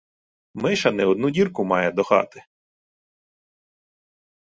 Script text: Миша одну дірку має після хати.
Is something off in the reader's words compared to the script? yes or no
yes